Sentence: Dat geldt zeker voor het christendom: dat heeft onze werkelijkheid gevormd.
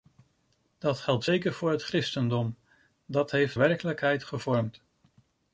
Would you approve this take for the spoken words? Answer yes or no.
no